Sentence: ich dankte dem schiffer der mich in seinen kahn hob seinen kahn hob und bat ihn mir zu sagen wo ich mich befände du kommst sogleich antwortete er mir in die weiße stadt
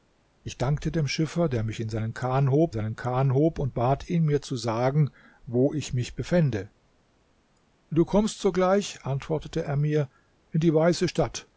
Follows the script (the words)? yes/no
yes